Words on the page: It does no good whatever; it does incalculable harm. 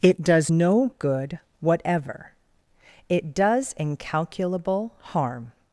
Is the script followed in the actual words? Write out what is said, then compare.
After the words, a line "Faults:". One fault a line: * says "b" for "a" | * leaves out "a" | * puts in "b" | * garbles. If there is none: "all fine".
It does no good whatever; it does incalculable harm.
Faults:
all fine